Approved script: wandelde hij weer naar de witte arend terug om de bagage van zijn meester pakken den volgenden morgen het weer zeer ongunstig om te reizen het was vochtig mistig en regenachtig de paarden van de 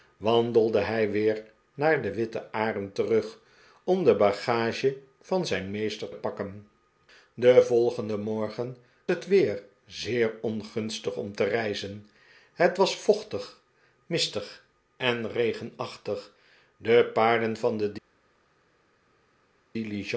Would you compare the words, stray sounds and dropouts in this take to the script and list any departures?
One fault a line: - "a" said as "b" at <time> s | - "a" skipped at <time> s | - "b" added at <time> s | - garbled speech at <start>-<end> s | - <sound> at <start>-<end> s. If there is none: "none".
none